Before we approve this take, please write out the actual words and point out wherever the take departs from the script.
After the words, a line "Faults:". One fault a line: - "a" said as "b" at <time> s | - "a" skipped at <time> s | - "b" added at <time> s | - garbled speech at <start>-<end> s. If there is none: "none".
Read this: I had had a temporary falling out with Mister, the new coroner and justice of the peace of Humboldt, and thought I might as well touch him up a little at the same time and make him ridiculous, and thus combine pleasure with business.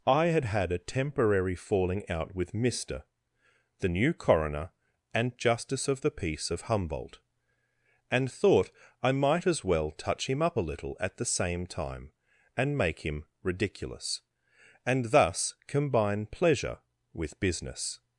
I had had a temporary falling out with Mister, the new coroner and justice of the peace of Humboldt, and thought I might as well touch him up a little at the same time and make him ridiculous, and thus combine pleasure with business.
Faults:
none